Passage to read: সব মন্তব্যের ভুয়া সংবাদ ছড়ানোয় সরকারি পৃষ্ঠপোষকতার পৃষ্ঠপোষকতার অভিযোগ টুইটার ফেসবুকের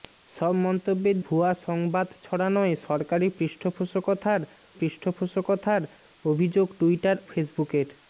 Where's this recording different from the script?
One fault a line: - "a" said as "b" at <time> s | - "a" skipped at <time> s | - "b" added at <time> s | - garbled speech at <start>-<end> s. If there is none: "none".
none